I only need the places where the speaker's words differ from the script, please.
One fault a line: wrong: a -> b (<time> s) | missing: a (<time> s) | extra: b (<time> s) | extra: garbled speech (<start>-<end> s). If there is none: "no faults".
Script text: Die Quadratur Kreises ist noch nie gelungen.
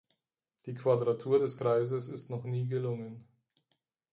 extra: des (1.4 s)